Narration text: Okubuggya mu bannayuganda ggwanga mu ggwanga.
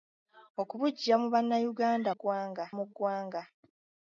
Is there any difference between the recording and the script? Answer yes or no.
no